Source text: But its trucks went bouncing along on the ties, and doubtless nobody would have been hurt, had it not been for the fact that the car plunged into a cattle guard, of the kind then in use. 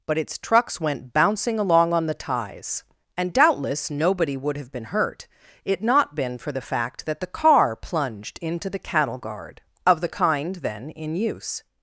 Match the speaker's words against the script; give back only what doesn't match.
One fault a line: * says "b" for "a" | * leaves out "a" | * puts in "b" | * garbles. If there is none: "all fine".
* leaves out "had"
* says "the" for "a"